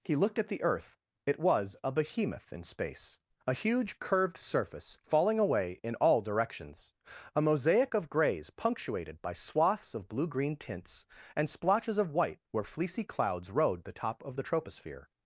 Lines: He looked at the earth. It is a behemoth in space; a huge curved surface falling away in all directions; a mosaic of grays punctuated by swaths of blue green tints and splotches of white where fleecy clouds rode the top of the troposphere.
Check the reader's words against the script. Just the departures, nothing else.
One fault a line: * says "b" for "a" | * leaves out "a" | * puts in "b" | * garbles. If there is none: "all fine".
* says "was" for "is"